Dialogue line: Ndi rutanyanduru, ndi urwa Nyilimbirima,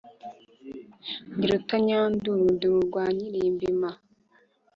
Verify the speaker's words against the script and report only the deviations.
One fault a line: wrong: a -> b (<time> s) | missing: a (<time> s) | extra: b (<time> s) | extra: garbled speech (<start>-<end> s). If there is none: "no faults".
no faults